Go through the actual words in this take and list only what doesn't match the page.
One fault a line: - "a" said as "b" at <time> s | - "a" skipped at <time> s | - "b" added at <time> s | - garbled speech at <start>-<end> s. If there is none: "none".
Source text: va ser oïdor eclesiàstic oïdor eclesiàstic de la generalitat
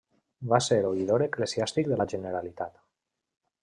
- "oïdor eclesiàstic" skipped at 1.9 s